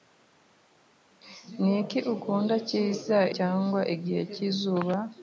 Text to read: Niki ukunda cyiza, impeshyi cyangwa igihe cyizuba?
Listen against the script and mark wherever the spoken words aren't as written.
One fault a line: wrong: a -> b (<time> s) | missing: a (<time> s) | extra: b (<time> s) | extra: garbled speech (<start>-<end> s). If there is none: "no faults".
missing: impeshyi (3.2 s)